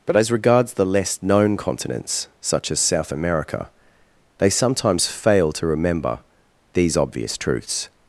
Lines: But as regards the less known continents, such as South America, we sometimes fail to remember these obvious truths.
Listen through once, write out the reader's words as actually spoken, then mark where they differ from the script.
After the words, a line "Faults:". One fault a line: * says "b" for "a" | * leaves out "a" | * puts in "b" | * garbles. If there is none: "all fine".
But as regards the less known continents, such as South America, they sometimes fail to remember these obvious truths.
Faults:
* says "they" for "we"